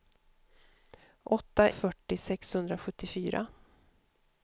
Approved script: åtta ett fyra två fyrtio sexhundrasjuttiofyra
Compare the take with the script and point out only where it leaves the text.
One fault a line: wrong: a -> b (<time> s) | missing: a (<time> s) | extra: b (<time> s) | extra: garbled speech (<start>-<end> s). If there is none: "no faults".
missing: ett fyra två (1.7 s)